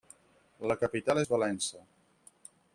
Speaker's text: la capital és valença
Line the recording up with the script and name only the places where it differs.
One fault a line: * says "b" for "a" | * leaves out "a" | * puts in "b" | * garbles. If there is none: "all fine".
all fine